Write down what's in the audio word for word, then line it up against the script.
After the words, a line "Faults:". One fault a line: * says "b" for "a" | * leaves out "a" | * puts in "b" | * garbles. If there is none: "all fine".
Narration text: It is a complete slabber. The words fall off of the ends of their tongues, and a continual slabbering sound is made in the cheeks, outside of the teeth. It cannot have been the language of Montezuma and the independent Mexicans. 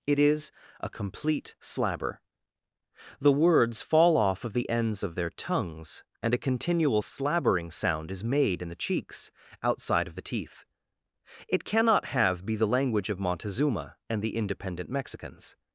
It is a complete slabber. The words fall off of the ends of their tongues, and a continual slabbering sound is made in the cheeks, outside of the teeth. It cannot have be the language of Montezuma and the independent Mexicans.
Faults:
* says "be" for "been"